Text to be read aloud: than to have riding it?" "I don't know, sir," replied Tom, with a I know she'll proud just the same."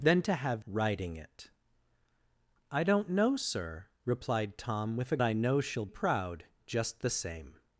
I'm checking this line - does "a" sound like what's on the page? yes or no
yes